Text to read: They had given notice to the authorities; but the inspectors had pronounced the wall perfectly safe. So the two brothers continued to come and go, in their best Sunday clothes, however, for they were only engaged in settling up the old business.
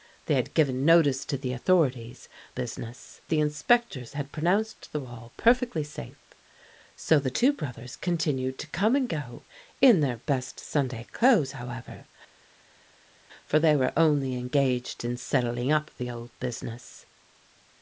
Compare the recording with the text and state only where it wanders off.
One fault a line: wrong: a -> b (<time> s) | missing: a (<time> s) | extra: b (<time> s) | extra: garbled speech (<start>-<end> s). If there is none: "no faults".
wrong: but -> business (2.5 s)